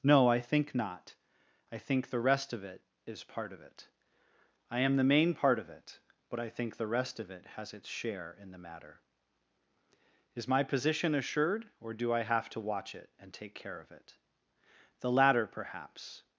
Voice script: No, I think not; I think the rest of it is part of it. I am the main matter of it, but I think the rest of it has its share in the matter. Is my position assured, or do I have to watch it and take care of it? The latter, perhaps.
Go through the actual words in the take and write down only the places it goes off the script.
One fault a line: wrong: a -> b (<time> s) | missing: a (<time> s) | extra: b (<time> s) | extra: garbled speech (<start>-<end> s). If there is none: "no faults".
wrong: matter -> part (5.3 s)